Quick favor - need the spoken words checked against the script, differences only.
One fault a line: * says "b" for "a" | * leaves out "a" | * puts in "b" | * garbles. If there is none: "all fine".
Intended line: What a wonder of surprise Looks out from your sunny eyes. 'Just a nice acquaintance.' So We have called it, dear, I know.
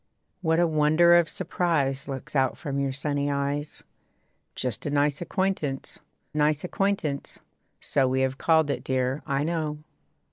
* puts in "nice acquaintance"